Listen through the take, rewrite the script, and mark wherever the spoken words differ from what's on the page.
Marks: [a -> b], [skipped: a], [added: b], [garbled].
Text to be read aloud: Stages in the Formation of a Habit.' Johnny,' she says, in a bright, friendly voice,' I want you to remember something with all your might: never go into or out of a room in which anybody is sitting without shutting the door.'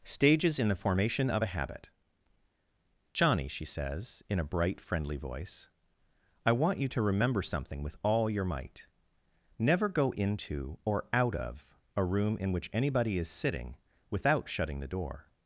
Stages in the Formation of a Habit.' Johnny,' she says, in a bright, friendly voice,' I want you to remember something with all your might: never go into or out of a room in which anybody is sitting without shutting the door.'